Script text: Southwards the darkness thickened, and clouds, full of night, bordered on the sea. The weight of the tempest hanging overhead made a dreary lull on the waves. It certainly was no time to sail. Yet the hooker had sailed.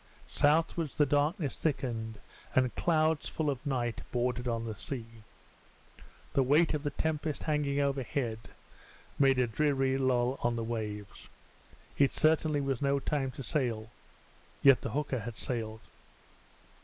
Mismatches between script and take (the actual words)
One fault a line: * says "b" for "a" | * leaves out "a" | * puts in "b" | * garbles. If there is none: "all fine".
all fine